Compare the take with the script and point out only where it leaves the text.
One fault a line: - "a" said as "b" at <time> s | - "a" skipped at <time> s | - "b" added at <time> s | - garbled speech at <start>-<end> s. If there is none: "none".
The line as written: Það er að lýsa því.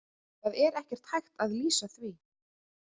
- "ekkert hægt" added at 0.8 s